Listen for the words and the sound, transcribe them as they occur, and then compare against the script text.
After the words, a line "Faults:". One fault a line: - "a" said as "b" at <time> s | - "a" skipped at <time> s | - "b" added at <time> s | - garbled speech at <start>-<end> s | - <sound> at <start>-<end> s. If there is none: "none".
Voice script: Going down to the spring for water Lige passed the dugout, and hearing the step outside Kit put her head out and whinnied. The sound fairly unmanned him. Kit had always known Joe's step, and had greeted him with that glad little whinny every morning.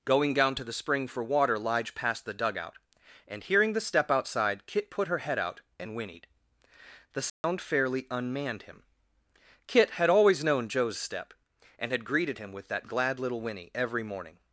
Going down to the spring for water Lige passed the dugout, and hearing the step outside Kit put her head out and whinnied. The sound fairly unmanned him. Kit had always known Joe's step, and had greeted him with that glad little whinny every morning.
Faults:
- dropout at 7.3-7.4 s